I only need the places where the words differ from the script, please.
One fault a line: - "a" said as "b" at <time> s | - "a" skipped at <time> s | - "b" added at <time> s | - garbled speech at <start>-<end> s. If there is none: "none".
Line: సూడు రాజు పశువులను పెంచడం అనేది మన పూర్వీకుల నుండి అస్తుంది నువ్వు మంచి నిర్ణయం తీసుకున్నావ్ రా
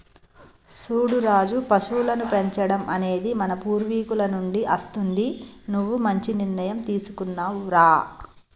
none